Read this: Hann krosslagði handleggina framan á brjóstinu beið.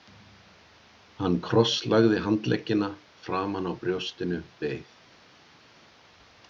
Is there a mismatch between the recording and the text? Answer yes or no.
no